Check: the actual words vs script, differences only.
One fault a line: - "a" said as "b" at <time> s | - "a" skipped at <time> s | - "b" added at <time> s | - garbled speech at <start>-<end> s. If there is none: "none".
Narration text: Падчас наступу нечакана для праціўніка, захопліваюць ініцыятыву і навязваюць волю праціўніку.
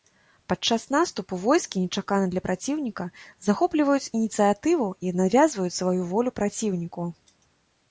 - "войскі" added at 1.4 s
- "сваю" added at 5.8 s